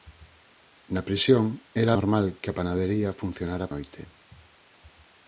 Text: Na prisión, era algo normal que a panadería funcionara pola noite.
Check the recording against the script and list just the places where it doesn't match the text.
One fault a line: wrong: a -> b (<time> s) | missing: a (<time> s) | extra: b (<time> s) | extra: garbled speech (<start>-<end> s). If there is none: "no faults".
missing: algo (1.9 s)
missing: pola (3.7 s)